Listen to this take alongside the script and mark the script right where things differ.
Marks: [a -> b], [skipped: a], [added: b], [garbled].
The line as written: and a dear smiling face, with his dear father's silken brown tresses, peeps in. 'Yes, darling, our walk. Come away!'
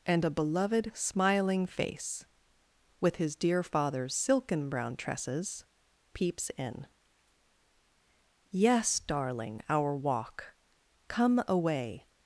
and a [dear -> beloved] smiling face, with his dear father's silken brown tresses, peeps in. 'Yes, darling, our walk. Come away!'